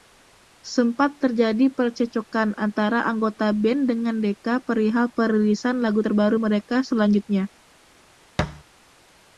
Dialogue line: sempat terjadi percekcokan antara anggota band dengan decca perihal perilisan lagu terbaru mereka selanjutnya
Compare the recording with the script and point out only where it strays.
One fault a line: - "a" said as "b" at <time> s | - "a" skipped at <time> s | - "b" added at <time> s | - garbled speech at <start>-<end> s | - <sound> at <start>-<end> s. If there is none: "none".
- thud at 8.4-8.6 s